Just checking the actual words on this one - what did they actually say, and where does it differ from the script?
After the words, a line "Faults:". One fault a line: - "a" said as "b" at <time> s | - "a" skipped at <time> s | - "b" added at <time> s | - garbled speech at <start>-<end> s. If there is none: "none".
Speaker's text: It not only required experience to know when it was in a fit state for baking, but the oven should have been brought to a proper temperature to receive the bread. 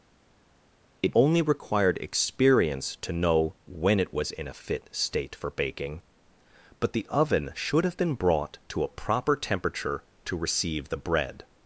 It only required experience to know when it was in a fit state for baking, but the oven should have been brought to a proper temperature to receive the bread.
Faults:
- "not" skipped at 1.2 s